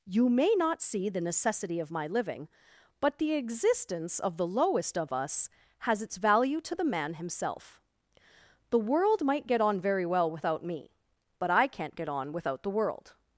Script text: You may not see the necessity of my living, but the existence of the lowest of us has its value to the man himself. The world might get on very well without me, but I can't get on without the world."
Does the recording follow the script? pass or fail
pass